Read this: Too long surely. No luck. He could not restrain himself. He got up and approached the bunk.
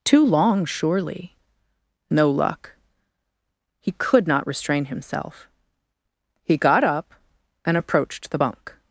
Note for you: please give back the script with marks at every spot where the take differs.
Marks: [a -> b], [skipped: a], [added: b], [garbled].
Too long surely. No luck. He could not restrain himself. He got up and approached the bunk.